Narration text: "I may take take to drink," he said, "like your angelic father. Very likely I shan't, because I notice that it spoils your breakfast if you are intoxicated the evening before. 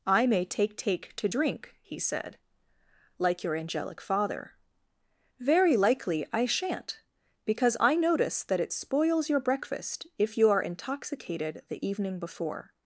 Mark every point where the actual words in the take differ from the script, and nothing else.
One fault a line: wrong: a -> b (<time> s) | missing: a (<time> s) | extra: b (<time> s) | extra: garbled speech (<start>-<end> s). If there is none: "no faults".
no faults